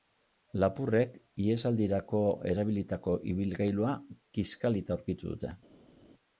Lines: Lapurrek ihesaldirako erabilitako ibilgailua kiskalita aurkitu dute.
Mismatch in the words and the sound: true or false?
false